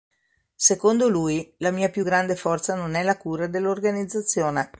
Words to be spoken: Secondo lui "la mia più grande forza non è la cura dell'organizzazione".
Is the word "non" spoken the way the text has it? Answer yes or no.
yes